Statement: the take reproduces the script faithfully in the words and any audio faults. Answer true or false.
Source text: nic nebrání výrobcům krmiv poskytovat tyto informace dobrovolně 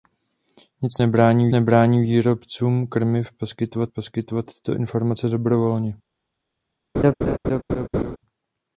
false